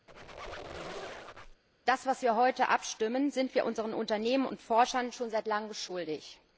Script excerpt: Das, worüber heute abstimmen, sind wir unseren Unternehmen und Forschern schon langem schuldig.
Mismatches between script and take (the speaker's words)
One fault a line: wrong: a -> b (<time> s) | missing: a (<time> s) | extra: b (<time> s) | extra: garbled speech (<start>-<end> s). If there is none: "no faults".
extra: wir (2.2 s)
extra: seit (5.3 s)